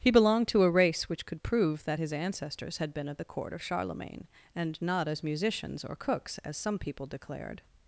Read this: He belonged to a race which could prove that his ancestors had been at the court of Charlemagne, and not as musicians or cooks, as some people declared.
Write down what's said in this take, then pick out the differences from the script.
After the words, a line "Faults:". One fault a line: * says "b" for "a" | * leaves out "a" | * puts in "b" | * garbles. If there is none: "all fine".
He belonged to a race which could prove that his ancestors had been at the court of Charlemagne, and not as musicians or cooks, as some people declared.
Faults:
all fine